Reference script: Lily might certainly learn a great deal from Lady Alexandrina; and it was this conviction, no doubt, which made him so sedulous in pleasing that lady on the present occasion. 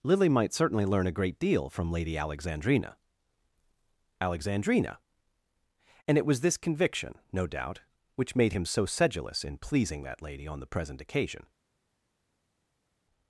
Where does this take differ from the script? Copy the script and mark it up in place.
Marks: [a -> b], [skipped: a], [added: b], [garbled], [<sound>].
Lily might certainly learn a great deal from Lady Alexandrina; [added: Alexandrina] and it was this conviction, no doubt, which made him so sedulous in pleasing that lady on the present occasion.